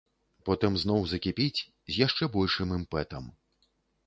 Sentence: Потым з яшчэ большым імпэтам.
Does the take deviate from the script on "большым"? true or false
false